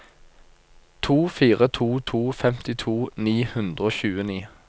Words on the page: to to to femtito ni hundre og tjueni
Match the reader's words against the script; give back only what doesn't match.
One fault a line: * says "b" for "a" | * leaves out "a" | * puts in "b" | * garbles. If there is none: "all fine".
* puts in "fire"